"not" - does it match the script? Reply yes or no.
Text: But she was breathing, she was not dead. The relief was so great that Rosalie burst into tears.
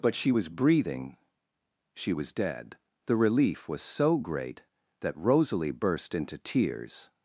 no